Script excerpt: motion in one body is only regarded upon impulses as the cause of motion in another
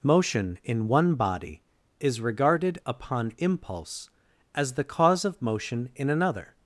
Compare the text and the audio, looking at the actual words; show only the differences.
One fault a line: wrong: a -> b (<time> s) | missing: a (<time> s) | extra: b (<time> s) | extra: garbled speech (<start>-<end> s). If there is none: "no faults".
missing: only (2.2 s)
wrong: impulses -> impulse (3.4 s)